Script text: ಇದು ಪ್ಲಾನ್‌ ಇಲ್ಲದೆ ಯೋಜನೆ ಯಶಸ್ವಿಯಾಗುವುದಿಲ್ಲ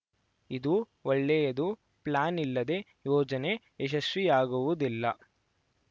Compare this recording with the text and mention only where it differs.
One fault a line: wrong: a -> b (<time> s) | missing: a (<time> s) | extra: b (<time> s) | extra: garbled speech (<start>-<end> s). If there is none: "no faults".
extra: ಒಳ್ಳೆಯದು (1.1 s)